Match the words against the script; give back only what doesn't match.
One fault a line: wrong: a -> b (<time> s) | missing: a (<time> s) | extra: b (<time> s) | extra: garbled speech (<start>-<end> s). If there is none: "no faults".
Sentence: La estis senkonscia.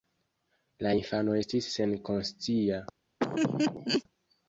extra: infano (0.9 s)